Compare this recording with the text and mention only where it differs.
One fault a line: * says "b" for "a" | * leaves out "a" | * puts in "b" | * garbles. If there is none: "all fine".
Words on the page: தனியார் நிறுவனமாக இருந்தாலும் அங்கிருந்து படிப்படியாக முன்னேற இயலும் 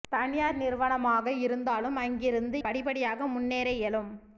all fine